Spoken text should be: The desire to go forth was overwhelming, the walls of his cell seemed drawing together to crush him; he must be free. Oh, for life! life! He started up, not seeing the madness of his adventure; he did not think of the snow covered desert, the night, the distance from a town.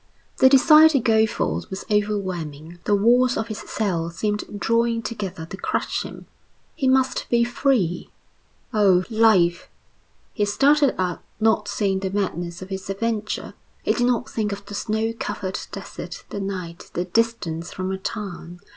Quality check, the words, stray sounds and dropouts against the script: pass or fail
fail